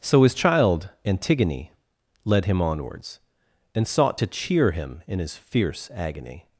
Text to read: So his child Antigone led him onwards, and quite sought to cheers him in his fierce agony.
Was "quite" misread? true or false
true